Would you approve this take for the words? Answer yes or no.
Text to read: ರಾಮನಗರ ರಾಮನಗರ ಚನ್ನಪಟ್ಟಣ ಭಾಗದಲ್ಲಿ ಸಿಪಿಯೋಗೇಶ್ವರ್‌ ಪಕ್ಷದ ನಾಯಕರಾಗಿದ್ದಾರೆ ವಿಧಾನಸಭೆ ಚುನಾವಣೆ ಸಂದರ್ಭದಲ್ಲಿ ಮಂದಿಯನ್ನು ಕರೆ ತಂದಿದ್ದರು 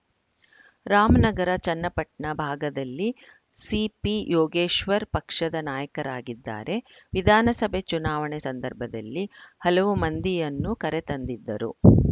no